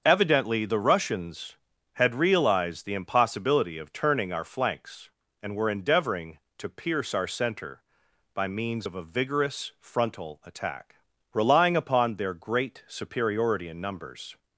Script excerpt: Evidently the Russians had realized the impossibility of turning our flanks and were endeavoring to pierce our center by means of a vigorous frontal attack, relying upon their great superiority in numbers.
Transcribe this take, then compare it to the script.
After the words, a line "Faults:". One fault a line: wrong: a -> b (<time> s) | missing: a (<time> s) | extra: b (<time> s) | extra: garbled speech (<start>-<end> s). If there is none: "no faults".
Evidently the Russians had realized the impossibility of turning our flanks and were endeavoring to pierce our center by means of a vigorous frontal attack, relying upon their great superiority in numbers.
Faults:
no faults